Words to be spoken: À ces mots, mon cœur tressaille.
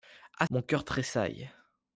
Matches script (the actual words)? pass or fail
fail